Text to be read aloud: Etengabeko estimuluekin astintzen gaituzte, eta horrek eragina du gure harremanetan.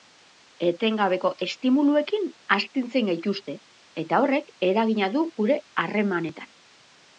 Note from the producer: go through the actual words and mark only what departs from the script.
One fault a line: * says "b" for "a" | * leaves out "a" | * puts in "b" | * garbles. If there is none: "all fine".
all fine